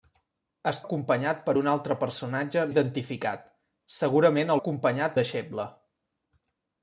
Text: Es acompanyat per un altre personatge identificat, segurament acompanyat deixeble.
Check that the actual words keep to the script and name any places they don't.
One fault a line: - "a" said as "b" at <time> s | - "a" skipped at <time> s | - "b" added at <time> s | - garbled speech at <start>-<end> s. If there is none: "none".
none